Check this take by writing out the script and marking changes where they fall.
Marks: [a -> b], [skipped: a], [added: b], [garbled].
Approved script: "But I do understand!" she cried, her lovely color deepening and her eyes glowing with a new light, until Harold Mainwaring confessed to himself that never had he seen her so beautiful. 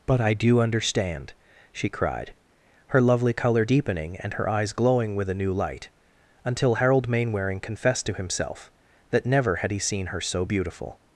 "But I do understand!" she cried, her lovely color deepening and her eyes glowing with a new light, until Harold Mainwaring confessed to himself that never had he seen her so beautiful.